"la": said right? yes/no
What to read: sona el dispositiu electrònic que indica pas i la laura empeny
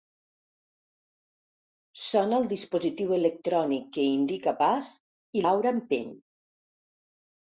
no